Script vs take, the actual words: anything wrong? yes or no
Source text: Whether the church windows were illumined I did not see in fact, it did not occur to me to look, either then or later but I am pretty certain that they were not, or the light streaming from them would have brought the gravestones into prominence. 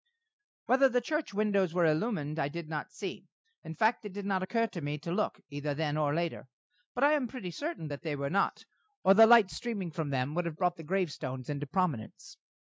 no